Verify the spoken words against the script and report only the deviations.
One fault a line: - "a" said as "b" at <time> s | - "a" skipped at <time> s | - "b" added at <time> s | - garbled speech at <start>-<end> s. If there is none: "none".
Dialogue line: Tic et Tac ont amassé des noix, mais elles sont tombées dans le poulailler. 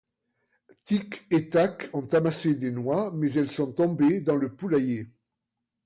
none